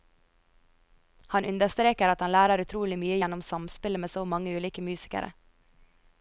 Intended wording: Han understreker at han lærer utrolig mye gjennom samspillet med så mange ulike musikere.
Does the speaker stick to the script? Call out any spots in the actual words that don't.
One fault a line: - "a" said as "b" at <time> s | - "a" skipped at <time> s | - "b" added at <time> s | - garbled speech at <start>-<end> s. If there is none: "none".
none